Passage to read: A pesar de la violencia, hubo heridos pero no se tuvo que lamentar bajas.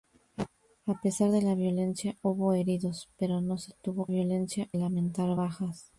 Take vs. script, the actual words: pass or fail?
fail